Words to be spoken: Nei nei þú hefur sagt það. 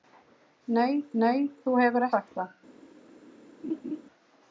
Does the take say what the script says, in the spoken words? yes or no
yes